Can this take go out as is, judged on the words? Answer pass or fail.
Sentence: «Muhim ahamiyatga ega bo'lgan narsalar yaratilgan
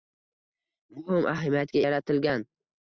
fail